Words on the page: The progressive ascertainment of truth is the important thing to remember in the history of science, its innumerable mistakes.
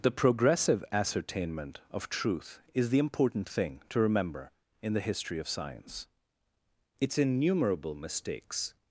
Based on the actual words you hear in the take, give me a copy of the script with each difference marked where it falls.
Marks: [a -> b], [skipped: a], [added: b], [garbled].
The progressive ascertainment of truth is the important thing to remember in the history of science, its innumerable mistakes.